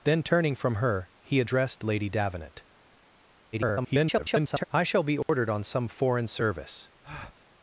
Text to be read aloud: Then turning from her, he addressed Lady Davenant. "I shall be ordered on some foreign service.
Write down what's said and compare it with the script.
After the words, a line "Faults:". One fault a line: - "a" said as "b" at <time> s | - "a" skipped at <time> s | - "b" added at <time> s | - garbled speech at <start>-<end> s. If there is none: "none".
Then turning from her, he addressed Lady Davenant. [garbled] "I shall be ordered on some foreign service.
Faults:
- garbled speech at 3.5-4.6 s